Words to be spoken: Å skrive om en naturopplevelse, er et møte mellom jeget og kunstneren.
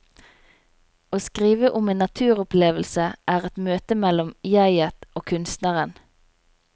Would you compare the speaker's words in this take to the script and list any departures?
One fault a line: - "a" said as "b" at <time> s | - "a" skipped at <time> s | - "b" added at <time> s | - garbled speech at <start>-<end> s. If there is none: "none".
none